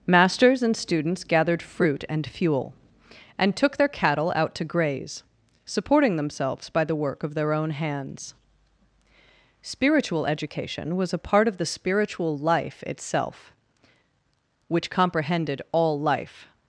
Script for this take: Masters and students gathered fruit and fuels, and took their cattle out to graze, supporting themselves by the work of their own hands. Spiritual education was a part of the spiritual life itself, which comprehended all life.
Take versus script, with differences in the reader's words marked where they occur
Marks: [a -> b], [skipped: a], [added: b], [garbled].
Masters and students gathered fruit and [fuels, -> fuel] and took their cattle out to graze, supporting themselves by the work of their own hands. Spiritual education was a part of the spiritual life itself, which comprehended all life.